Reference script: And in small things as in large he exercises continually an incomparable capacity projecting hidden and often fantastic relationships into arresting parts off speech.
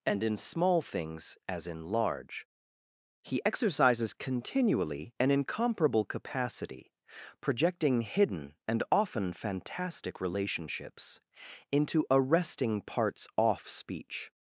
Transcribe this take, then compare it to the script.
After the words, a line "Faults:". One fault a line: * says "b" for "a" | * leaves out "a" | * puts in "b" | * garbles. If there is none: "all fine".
And in small things as in large he exercises continually an incomparable capacity projecting hidden and often fantastic relationships into arresting parts off speech.
Faults:
all fine